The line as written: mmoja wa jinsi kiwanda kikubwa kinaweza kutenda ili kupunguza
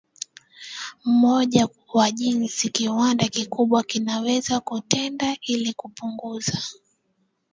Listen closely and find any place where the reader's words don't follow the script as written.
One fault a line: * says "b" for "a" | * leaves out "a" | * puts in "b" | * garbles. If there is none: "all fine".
all fine